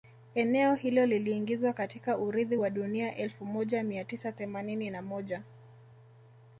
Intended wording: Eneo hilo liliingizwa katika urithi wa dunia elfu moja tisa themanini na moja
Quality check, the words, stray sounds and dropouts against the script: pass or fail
fail